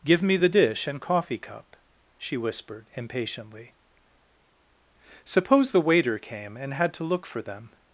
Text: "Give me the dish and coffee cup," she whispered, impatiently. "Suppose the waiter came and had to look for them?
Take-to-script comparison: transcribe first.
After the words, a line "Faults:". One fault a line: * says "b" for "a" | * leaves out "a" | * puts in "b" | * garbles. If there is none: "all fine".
"Give me the dish and coffee cup," she whispered, impatiently. "Suppose the waiter came and had to look for them?
Faults:
all fine